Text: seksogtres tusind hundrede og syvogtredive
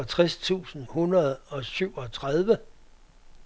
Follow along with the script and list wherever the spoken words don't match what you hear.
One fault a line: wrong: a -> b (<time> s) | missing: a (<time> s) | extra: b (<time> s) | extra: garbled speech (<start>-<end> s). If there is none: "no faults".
no faults